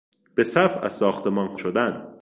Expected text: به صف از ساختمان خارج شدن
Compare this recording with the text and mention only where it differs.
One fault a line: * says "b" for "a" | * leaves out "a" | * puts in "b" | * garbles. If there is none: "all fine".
* leaves out "خارج"